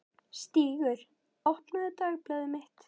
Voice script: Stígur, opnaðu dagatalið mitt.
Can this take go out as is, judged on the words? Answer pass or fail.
pass